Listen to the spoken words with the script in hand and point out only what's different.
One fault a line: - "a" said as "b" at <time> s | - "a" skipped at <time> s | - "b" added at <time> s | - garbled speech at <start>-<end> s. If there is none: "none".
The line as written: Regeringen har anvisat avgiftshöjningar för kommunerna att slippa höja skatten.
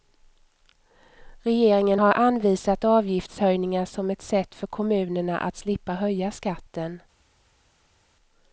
- "som ett sätt" added at 3.9 s